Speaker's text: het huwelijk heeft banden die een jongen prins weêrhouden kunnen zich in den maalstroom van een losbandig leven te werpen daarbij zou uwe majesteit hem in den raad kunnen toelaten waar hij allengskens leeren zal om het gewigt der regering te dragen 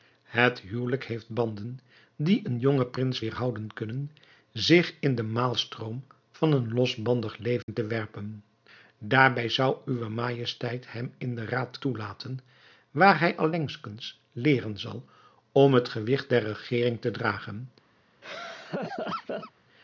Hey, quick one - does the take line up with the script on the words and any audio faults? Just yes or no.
no